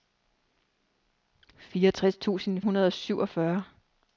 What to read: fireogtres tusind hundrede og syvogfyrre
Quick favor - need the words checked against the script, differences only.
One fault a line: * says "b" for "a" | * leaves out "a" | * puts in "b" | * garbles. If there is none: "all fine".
all fine